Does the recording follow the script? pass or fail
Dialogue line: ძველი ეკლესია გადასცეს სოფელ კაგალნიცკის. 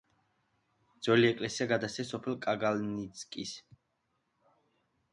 pass